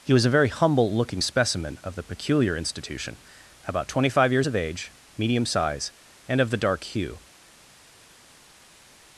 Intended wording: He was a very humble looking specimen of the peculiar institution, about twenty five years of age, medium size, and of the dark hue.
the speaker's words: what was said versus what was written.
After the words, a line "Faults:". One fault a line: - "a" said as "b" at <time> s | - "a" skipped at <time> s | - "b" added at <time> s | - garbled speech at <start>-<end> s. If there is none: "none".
He was a very humble looking specimen of the peculiar institution, about twenty five years of age, medium size, and of the dark hue.
Faults:
none